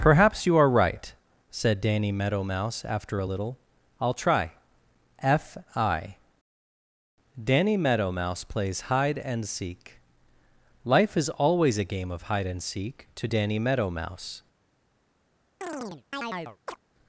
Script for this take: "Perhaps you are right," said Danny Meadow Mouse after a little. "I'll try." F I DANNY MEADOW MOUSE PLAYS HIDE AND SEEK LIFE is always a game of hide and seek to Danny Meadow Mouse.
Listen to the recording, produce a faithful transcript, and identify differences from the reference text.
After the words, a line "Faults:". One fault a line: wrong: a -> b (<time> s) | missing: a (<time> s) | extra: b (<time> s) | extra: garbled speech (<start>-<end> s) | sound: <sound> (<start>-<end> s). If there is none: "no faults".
"Perhaps you are right," said Danny Meadow Mouse after a little. "I'll try." F I DANNY MEADOW MOUSE PLAYS HIDE AND SEEK LIFE is always a game of hide and seek to Danny Meadow Mouse.
Faults:
sound: chirp (15.6-16.8 s)